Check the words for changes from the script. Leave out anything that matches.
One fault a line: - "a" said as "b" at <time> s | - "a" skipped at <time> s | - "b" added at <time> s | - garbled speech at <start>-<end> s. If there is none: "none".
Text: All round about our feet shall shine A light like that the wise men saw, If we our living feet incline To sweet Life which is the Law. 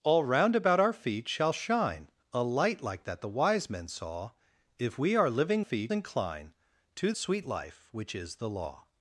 none